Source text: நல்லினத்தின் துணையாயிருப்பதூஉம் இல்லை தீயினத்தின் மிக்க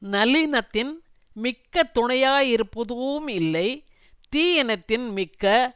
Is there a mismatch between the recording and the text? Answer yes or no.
yes